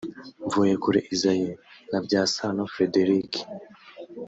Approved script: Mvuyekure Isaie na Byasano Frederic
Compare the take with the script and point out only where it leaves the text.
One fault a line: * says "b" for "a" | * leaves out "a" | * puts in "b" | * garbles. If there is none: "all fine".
all fine